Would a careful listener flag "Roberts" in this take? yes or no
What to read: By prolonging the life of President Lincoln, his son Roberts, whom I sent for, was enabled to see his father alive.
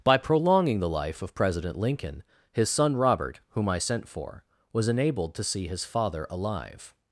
yes